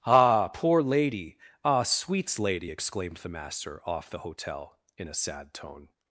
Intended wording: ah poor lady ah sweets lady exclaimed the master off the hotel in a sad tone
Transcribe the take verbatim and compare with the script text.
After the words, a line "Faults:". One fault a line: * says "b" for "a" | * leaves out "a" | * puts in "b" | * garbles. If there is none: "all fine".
ah poor lady ah sweets lady exclaimed the master off the hotel in a sad tone
Faults:
all fine